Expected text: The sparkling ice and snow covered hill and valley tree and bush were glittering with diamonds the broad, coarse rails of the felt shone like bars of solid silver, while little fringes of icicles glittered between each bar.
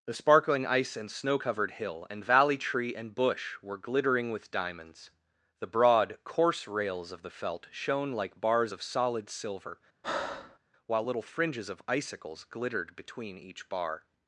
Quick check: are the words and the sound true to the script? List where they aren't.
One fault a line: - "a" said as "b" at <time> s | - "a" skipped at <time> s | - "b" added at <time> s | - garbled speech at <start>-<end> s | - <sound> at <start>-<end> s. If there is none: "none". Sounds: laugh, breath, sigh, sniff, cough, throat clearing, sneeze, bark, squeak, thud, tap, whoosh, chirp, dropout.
- breath at 10.0-10.6 s